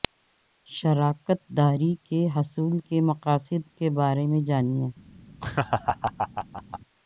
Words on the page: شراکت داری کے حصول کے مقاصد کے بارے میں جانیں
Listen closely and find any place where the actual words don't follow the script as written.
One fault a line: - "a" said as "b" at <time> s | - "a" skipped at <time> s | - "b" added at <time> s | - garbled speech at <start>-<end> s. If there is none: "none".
none